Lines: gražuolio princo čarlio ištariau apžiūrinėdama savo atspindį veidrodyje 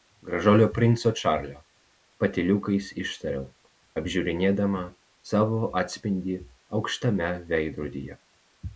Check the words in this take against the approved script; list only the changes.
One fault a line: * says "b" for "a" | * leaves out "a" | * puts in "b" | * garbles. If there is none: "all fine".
* puts in "patyliukais"
* puts in "aukštame"